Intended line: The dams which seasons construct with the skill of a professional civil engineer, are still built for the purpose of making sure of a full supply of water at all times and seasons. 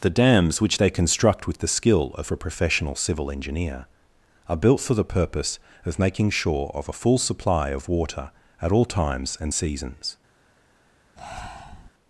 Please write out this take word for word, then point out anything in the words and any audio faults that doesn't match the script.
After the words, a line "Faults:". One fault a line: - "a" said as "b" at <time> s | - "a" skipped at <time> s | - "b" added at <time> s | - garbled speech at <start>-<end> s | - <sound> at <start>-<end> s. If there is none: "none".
The dams which they construct with the skill of a professional civil engineer, are built for the purpose of making sure of a full supply of water at all times and seasons.
Faults:
- "seasons" said as "they" at 0.8 s
- "still" skipped at 4.6 s
- breath at 11.2-11.9 s